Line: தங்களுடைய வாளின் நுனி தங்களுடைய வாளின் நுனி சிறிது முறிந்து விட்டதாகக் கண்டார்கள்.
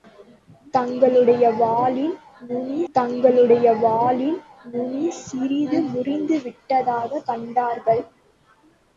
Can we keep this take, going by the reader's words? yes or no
yes